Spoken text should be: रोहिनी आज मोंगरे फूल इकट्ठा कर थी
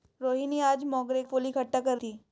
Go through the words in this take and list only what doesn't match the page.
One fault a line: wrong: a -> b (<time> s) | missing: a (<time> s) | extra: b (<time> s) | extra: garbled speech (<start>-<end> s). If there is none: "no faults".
no faults